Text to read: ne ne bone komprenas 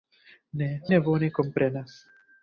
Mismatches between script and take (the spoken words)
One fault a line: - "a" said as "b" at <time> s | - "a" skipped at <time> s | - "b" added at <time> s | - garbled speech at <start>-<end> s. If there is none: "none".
none